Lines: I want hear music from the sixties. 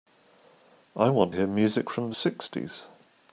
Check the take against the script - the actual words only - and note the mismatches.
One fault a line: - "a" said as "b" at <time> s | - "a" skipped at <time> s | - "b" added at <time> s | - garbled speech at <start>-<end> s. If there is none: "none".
none